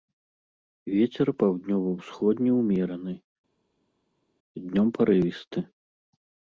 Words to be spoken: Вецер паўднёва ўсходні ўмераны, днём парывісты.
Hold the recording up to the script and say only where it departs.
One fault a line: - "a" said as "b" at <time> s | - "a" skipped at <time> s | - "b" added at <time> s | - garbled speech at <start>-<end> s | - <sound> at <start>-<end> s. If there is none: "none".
none